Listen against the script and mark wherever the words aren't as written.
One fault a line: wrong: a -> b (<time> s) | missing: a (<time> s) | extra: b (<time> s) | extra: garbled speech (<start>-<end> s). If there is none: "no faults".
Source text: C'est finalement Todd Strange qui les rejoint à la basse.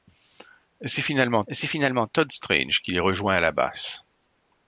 extra: c'est finalement (1.5 s)